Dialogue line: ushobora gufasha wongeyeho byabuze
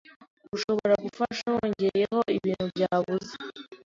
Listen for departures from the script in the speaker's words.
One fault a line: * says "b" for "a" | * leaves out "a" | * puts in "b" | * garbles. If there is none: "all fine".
* puts in "ibintu"